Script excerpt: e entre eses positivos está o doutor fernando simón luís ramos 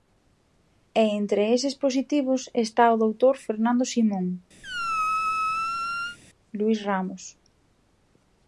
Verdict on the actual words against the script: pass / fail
pass